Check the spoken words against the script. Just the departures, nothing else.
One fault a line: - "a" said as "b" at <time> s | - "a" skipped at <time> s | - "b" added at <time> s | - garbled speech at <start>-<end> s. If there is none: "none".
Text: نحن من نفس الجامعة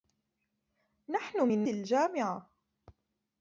- "نفس" skipped at 1.6 s